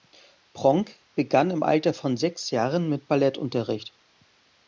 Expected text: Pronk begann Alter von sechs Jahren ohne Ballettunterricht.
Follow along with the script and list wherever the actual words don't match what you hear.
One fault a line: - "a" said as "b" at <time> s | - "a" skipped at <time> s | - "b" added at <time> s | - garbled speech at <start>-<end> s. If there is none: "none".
- "im" added at 1.5 s
- "ohne" said as "mit" at 2.9 s